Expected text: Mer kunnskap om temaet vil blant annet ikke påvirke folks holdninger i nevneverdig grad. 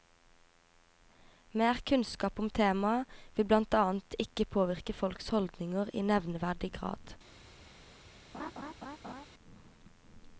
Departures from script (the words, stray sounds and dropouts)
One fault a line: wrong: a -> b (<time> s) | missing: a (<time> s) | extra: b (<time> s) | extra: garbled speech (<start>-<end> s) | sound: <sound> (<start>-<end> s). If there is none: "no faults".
sound: laugh (8.3-9.3 s)